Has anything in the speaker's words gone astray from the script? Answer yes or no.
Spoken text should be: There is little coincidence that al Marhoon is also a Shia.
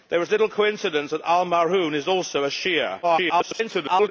yes